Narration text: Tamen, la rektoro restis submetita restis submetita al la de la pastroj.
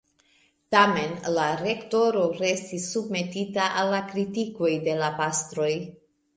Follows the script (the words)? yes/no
no